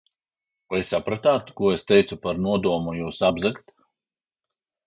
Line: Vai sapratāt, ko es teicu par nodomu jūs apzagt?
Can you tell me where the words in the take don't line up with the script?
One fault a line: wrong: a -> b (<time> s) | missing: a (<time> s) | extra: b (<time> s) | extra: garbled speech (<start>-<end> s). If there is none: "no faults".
no faults